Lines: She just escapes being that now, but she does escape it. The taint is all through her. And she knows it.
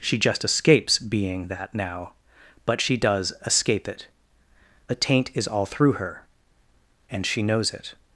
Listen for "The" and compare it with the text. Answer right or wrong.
wrong